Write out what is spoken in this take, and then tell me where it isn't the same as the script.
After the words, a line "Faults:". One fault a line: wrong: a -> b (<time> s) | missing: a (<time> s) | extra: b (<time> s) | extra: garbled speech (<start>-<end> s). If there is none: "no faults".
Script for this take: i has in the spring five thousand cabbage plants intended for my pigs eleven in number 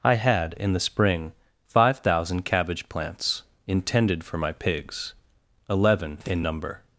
i had in the spring five thousand cabbage plants intended for my pigs eleven in number
Faults:
wrong: has -> had (0.1 s)